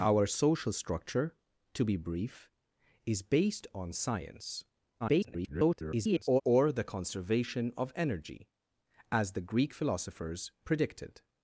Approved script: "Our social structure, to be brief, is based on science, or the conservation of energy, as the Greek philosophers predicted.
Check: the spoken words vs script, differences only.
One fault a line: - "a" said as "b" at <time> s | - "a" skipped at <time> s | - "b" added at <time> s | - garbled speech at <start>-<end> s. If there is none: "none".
- garbled speech at 5.0-6.4 s